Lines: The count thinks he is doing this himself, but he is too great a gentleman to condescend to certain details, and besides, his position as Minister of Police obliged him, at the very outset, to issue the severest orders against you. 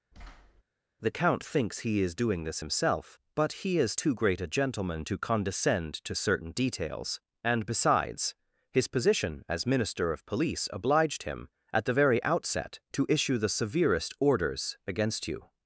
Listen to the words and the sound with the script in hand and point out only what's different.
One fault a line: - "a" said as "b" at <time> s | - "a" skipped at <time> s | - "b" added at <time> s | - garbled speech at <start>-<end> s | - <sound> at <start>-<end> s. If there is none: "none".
- thud at 0.1-0.6 s